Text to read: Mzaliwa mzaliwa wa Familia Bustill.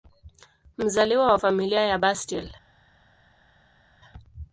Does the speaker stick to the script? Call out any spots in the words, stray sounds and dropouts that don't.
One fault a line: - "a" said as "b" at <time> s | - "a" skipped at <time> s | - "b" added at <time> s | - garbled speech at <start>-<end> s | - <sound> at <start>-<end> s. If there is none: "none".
- "mzaliwa" skipped at 1.3 s
- "ya" added at 1.8 s